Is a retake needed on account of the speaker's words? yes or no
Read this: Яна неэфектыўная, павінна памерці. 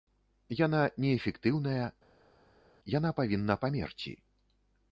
yes